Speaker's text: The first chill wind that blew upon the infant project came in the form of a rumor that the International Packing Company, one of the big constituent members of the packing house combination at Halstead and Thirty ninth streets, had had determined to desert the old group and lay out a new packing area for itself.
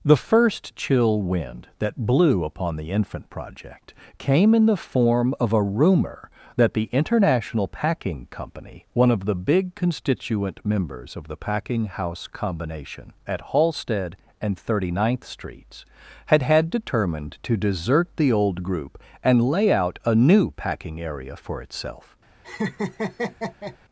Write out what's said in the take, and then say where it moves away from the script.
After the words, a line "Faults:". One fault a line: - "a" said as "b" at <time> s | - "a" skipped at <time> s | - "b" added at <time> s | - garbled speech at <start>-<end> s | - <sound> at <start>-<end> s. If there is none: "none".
The first chill wind that blew upon the infant project came in the form of a rumor that the International Packing Company, one of the big constituent members of the packing house combination at Halstead and Thirty ninth streets, had had determined to desert the old group and lay out a new packing area for itself.
Faults:
- laugh at 22.4-23.8 s